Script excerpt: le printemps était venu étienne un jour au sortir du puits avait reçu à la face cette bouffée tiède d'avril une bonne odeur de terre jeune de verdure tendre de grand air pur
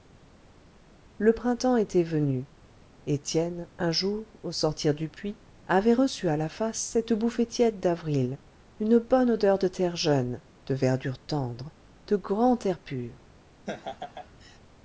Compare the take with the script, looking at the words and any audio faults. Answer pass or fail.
fail